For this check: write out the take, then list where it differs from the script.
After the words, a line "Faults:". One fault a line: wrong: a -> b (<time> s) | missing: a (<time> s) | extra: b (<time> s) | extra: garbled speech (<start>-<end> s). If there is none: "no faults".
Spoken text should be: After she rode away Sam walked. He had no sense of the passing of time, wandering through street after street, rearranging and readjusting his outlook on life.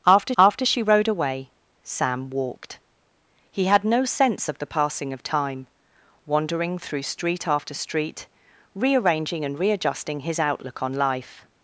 After after she rode away Sam walked. He had no sense of the passing of time, wandering through street after street, rearranging and readjusting his outlook on life.
Faults:
extra: after (0.4 s)